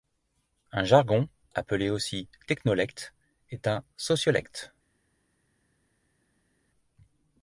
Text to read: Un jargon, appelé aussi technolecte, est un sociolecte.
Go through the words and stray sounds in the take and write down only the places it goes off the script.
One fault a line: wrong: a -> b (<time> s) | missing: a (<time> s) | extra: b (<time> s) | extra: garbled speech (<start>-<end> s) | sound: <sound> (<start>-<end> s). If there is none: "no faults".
no faults